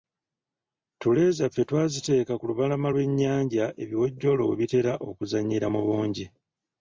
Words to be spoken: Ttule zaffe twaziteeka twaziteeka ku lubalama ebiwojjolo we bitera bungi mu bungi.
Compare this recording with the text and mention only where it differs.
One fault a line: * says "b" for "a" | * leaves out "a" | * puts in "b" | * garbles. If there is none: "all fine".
* leaves out "twaziteeka"
* puts in "lw'ennyanja"
* says "okuzannyira" for "bungi"